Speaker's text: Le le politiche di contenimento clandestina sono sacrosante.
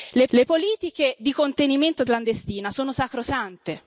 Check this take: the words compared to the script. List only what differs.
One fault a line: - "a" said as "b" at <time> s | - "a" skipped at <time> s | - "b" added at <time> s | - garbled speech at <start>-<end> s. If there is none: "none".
none